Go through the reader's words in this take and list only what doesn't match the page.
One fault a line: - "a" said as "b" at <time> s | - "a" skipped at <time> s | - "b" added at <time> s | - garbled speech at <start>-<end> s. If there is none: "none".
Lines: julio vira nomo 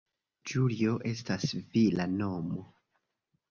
- "estas" added at 1.1 s